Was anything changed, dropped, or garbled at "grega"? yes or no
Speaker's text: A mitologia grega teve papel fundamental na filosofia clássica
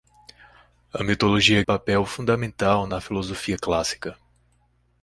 yes